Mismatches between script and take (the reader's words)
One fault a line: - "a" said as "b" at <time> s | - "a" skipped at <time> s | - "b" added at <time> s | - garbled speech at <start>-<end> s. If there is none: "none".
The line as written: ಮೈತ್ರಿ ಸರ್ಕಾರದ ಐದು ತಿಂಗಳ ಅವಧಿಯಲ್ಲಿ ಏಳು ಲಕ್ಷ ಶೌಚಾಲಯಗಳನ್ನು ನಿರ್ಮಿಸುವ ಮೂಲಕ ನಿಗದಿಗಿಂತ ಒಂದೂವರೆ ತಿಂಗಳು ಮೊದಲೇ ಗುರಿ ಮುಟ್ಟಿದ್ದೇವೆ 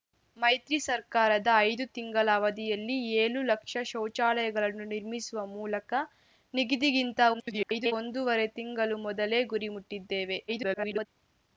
- garbled speech at 7.3-7.9 s
- garbled speech at 10.5-11.1 s